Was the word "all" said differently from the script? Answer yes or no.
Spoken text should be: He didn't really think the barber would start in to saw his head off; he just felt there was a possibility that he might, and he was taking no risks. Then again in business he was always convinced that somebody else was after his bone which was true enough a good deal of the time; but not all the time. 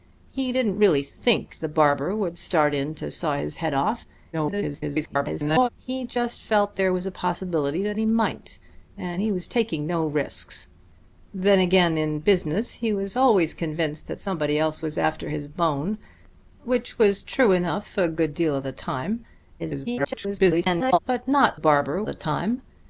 yes